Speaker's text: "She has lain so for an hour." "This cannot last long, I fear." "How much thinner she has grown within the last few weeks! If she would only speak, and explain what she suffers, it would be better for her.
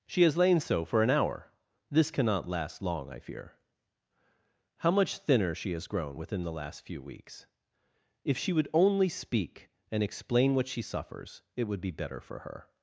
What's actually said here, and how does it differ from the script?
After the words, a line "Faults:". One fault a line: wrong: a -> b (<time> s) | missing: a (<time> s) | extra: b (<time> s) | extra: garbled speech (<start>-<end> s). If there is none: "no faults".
"She has lain so for an hour." "This cannot last long, I fear." "How much thinner she has grown within the last few weeks! If she would only speak, and explain what she suffers, it would be better for her.
Faults:
no faults